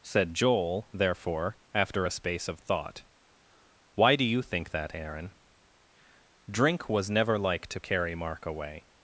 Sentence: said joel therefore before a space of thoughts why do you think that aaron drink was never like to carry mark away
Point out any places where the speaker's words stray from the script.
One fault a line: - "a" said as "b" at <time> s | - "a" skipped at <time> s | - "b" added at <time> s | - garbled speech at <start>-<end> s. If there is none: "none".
- "before" said as "after" at 1.7 s
- "thoughts" said as "thought" at 2.6 s